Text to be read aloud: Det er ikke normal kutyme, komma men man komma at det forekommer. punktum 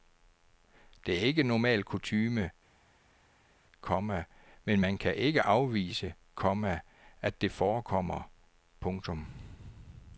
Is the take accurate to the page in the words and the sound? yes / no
no